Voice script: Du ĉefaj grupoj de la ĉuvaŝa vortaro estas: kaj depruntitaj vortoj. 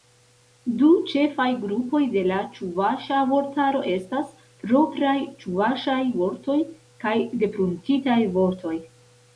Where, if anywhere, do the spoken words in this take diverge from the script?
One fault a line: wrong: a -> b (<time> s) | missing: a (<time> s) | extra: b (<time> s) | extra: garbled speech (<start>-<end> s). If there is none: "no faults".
extra: propraj ĉuvaŝaj vortoj (4.6 s)